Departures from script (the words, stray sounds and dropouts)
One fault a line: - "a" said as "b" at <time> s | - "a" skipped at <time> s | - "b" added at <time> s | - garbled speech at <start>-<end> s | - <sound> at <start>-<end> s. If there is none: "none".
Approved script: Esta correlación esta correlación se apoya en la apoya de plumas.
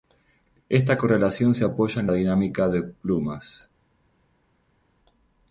- "esta correlación" skipped at 1.5 s
- "apoya" said as "dinámica" at 2.1 s